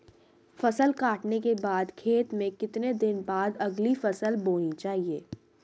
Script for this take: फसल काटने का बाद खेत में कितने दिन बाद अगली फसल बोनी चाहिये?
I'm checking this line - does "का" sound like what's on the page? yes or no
no